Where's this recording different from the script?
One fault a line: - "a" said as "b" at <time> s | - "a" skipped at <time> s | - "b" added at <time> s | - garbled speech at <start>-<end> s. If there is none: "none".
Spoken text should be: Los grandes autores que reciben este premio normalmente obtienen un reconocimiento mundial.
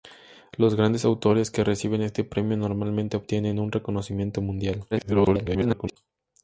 - garbled speech at 4.9-6.0 s